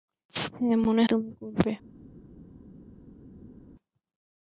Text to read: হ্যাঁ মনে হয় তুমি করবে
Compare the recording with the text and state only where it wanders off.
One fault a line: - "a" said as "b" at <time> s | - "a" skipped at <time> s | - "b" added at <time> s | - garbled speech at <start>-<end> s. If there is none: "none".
- "হয়" skipped at 1.0 s